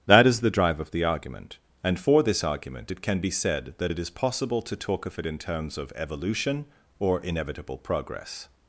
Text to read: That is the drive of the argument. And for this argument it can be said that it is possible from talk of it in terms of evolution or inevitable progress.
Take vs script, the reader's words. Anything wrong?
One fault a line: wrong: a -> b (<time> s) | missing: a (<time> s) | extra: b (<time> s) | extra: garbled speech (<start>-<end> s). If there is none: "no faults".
wrong: from -> to (4.6 s)